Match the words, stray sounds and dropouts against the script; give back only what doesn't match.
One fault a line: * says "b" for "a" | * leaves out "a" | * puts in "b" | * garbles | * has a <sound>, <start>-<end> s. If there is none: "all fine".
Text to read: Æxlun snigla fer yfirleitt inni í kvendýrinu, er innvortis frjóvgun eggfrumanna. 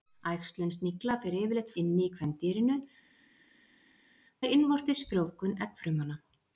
all fine